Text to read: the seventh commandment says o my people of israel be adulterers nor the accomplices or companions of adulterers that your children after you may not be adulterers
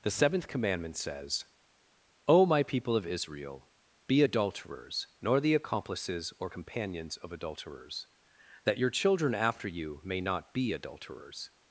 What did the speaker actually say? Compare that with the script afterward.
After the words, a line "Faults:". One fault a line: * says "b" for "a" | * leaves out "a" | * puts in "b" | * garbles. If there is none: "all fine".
the seventh commandment says o my people of israel be adulterers nor the accomplices or companions of adulterers that your children after you may not be adulterers
Faults:
all fine